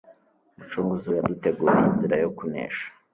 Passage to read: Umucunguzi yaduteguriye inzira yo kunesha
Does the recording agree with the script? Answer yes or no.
yes